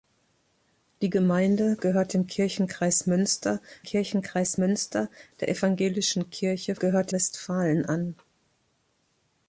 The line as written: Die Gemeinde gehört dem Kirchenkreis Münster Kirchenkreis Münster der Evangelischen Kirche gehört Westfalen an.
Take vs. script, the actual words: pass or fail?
pass